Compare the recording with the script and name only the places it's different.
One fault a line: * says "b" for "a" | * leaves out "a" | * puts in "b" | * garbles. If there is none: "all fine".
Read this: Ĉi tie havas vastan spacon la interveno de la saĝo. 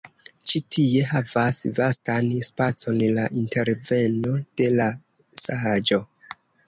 all fine